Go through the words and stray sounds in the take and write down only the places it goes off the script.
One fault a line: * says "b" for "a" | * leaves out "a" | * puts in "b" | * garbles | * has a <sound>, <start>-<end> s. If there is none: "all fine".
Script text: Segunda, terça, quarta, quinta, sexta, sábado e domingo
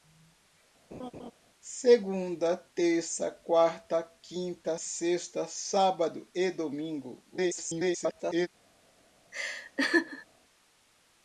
* has a laugh, 0.9-1.3 s
* garbles
* has a laugh, 9.3-10.3 s